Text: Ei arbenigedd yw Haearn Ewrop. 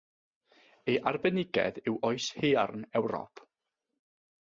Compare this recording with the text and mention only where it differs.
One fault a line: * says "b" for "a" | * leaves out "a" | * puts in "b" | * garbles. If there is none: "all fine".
* puts in "Oes"